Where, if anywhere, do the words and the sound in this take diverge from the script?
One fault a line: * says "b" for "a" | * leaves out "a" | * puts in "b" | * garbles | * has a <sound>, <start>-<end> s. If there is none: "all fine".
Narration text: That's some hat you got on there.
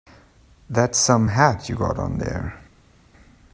all fine